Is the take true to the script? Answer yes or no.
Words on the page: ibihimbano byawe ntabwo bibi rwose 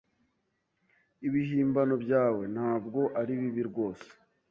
no